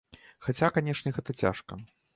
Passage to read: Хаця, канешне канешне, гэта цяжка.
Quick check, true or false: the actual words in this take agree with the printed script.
false